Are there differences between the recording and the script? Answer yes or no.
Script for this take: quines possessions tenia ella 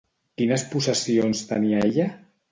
no